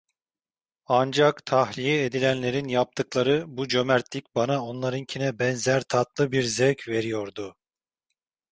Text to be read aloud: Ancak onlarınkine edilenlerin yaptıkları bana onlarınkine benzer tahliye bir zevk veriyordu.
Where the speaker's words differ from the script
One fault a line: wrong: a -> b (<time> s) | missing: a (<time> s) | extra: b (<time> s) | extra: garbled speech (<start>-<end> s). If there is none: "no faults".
wrong: onlarınkine -> tahliye (1.4 s)
extra: bu cömertlik (3.5 s)
wrong: tahliye -> tatlı (5.8 s)